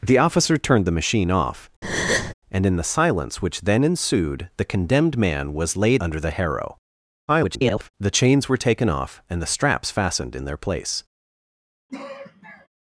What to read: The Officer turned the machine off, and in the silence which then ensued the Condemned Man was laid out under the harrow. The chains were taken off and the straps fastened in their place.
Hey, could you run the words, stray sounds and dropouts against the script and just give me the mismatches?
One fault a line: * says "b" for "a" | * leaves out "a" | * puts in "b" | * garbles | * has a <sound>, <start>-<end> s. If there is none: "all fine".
* has a breath, 1.8-2.3 s
* leaves out "out"
* garbles
* has a sigh, 11.9-12.7 s